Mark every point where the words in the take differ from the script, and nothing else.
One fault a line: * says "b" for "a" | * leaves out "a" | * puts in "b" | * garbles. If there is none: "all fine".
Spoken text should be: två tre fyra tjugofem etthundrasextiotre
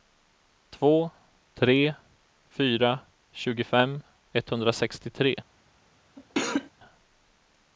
all fine